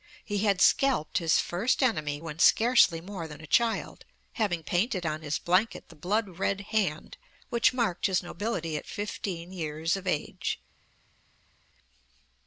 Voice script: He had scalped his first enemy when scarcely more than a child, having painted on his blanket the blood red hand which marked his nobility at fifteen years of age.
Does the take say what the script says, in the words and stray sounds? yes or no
yes